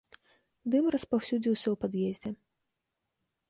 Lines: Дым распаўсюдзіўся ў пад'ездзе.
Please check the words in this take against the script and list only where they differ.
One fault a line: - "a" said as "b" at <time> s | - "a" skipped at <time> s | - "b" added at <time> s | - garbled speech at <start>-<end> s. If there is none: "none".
none